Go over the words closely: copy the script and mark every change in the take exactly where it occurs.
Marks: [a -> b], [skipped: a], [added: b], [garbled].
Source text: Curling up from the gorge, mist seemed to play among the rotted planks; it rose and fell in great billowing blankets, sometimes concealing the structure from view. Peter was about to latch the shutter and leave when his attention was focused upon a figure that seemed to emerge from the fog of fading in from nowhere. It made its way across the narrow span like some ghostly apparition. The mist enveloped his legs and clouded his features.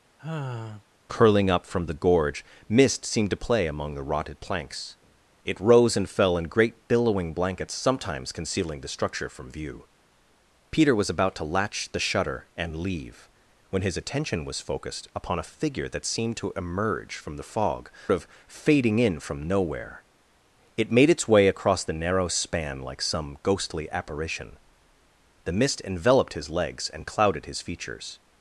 Curling up from the gorge, mist seemed to play among the rotted planks; it rose and fell in great billowing blankets, sometimes concealing the structure from view. Peter was about to latch the shutter and leave when his attention was focused upon a figure that seemed to emerge from the fog of fading in from nowhere. It made its way across the narrow span like some ghostly apparition. The mist enveloped his legs and clouded his features.